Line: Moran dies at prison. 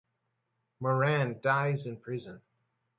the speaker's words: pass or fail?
fail